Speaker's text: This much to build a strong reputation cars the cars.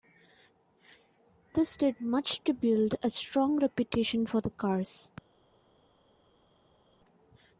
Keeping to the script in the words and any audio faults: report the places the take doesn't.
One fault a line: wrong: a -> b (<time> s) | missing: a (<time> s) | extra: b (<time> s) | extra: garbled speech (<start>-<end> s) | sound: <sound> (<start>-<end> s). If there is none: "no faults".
extra: did (1.8 s)
wrong: cars -> for (4.3 s)